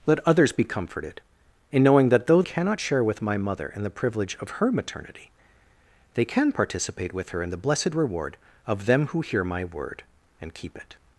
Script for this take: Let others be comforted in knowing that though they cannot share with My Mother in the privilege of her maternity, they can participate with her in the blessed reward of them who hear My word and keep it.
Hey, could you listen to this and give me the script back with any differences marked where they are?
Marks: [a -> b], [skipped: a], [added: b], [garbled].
Let others be comforted in knowing that though [skipped: they] cannot share with My Mother in the privilege of her maternity, they can participate with her in the blessed reward of them who hear My word and keep it.